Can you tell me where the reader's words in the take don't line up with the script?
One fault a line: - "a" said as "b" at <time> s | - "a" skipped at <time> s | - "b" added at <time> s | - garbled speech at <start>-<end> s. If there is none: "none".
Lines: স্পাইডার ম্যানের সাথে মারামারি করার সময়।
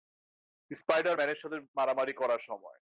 none